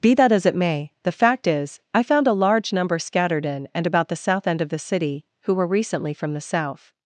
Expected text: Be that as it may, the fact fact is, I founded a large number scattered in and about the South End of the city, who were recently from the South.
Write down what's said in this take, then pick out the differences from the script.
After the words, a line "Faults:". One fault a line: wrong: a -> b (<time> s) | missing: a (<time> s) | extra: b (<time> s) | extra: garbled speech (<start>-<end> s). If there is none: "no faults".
Be that as it may, the fact is, I found a large number scattered in and about the South End of the city, who were recently from the South.
Faults:
missing: fact (1.4 s)
wrong: founded -> found (2.0 s)